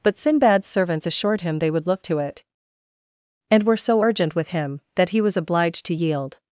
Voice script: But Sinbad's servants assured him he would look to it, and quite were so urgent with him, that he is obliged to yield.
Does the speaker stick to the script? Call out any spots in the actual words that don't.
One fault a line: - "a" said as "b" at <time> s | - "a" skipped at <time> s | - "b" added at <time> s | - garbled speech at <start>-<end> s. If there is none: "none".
- "he" said as "they" at 1.6 s
- "quite" skipped at 3.6 s
- "is" said as "was" at 5.2 s